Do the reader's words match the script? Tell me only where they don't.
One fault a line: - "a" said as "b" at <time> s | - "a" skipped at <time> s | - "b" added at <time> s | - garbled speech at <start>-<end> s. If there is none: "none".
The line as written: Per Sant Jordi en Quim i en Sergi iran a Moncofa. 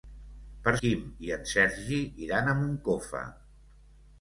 - "Sant Jordi en" skipped at 0.7 s